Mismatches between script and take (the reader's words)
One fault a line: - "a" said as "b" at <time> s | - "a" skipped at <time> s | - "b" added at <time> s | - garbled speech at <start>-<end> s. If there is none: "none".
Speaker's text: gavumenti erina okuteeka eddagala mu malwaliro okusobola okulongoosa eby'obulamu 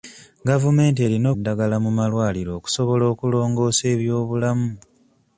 - "okuteeka" skipped at 1.3 s